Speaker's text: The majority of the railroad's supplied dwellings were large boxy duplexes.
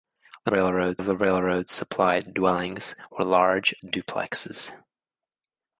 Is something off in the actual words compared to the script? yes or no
yes